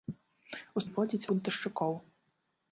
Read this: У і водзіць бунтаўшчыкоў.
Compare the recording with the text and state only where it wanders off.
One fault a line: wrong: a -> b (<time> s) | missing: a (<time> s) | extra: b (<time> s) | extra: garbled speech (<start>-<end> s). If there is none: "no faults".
no faults